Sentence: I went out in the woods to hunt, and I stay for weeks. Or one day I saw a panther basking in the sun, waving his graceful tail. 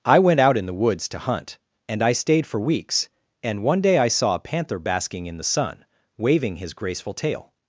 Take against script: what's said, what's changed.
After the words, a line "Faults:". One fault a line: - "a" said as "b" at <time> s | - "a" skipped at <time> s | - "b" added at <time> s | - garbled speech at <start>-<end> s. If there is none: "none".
I went out in the woods to hunt, and I stayed for weeks. And one day I saw a panther basking in the sun, waving his graceful tail.
Faults:
- "stay" said as "stayed" at 2.1 s
- "Or" said as "And" at 3.4 s